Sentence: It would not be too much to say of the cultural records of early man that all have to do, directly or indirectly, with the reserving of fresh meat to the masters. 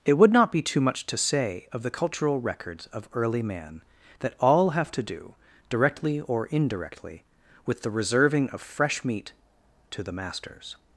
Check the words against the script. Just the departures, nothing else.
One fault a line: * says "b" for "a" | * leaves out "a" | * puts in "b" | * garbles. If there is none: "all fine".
all fine